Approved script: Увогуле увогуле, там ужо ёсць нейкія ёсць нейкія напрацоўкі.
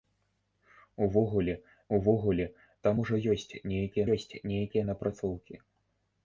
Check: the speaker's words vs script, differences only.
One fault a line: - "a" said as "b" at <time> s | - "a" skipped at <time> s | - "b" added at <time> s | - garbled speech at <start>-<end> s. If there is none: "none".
none